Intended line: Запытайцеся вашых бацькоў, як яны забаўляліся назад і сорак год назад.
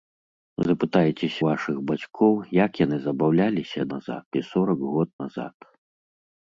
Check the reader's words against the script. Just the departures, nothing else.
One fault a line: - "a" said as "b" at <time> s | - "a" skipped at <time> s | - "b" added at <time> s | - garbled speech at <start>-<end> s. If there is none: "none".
none